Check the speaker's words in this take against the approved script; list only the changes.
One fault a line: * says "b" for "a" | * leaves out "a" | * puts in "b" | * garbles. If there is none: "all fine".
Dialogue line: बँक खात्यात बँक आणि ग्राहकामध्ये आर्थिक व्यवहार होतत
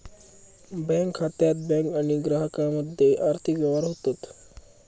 all fine